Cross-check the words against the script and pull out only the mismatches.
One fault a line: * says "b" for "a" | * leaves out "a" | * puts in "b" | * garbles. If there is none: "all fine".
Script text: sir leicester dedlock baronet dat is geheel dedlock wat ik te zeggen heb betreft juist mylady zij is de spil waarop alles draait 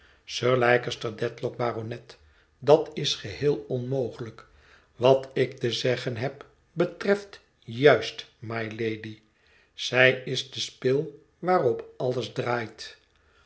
* says "onmogelijk" for "dedlock"